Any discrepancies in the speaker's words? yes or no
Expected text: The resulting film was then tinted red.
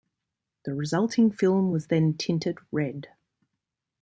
no